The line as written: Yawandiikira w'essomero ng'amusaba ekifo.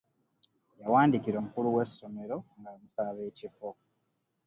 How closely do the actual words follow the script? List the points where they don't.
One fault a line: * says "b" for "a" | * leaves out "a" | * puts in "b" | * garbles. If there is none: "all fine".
* puts in "omukulu"